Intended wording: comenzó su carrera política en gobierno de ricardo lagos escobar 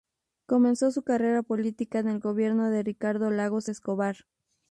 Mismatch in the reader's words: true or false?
true